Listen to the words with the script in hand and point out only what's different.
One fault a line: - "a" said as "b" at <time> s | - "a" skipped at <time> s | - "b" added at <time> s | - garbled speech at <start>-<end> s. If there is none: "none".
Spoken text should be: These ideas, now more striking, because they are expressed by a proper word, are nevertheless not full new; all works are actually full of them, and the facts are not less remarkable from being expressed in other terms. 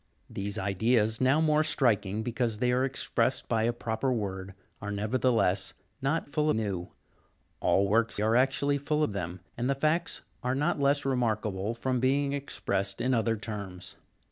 none